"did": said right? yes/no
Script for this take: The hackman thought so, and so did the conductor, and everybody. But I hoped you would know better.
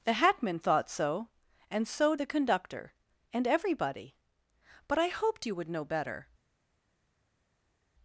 no